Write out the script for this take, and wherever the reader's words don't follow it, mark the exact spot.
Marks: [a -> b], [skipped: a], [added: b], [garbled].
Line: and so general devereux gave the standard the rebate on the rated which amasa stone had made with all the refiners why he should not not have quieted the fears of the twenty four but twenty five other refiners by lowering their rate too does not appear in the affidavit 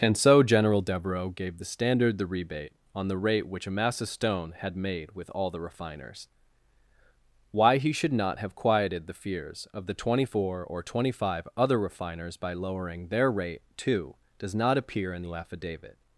and so general devereux gave the standard the rebate on the [rated -> rate] which amasa stone had made with all the refiners why he should not [skipped: not] have quieted the fears of the twenty four [but -> or] twenty five other refiners by lowering their rate too does not appear in the affidavit